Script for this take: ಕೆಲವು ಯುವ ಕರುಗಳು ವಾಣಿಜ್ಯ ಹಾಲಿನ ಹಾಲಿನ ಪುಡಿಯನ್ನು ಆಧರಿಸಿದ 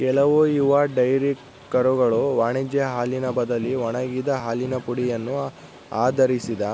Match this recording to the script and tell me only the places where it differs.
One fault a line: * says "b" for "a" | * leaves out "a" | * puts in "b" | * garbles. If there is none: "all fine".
* puts in "ಡೈರಿ"
* puts in "ಬದಲಿ ಒಣಗಿದ"